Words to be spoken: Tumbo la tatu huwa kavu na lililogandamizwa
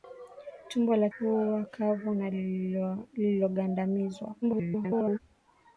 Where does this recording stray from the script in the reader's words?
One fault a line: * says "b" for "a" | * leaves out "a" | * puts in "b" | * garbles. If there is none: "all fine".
* leaves out "tatu"
* garbles